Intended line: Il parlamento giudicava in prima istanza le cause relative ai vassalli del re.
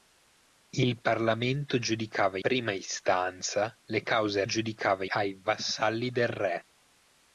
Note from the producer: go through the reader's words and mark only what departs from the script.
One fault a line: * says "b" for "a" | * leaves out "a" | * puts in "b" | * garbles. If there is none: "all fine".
* leaves out "in"
* says "giudicava" for "relative"